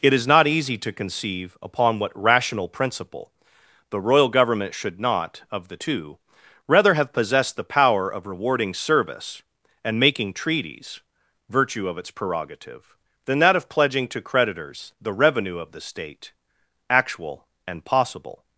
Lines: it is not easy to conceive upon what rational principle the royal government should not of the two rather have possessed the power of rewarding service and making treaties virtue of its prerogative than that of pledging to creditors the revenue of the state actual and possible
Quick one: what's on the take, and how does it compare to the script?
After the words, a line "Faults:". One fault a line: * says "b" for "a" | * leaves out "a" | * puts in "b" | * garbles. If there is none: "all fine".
it is not easy to conceive upon what rational principle the royal government should not of the two rather have possessed the power of rewarding service and making treaties virtue of its prerogative than that of pledging to creditors the revenue of the state actual and possible
Faults:
all fine